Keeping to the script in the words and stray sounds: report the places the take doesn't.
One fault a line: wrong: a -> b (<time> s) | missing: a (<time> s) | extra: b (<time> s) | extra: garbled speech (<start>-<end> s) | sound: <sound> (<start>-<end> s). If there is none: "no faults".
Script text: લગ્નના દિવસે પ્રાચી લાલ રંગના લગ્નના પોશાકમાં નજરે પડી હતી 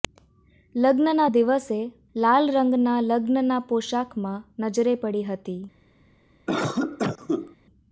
missing: પ્રાચી (1.8 s)
sound: cough (6.5-7.6 s)